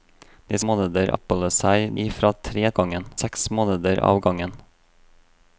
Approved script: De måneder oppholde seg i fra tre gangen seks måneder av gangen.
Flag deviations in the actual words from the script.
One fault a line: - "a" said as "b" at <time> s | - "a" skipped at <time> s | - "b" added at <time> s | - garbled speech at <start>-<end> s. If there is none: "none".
none